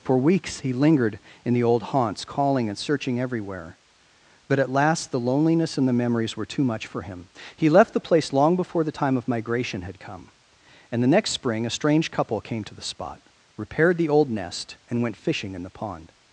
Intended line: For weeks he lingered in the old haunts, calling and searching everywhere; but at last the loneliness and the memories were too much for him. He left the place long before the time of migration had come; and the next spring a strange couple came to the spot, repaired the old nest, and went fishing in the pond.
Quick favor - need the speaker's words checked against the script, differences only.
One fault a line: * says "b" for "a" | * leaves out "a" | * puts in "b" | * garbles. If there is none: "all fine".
all fine